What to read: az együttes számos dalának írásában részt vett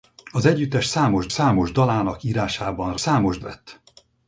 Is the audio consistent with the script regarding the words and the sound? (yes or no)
no